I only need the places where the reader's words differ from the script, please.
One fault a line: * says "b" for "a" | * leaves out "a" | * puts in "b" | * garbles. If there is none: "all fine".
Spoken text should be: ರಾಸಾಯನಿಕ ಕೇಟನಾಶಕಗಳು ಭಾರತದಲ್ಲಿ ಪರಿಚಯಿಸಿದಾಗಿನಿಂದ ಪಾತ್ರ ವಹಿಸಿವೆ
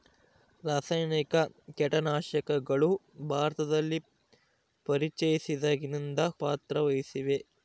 all fine